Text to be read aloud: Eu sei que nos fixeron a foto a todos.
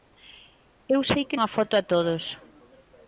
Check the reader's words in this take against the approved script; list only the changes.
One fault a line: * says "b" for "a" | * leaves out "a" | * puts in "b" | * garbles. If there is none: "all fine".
* leaves out "nos fixeron"